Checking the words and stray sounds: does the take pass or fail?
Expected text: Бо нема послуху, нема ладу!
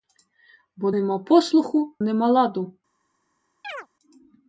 fail